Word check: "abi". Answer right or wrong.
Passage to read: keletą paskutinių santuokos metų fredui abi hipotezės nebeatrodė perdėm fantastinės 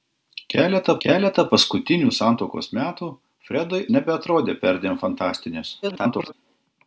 wrong